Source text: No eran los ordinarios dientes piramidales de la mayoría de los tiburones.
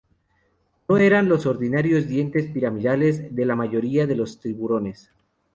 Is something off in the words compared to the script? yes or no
no